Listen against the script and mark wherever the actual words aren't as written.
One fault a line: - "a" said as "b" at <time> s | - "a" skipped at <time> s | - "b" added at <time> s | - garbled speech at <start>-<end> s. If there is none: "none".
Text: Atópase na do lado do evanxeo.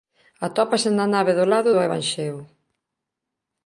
- "nave" added at 1.1 s